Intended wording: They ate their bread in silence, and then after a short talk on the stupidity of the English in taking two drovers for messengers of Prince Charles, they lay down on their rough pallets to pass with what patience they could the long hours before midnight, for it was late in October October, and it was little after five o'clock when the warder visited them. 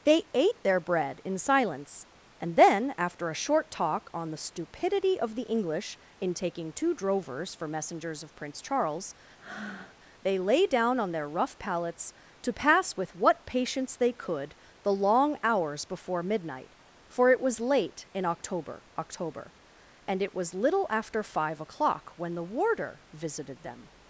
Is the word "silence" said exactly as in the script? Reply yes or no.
yes